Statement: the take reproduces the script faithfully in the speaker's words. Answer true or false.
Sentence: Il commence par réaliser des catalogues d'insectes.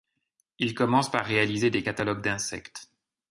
true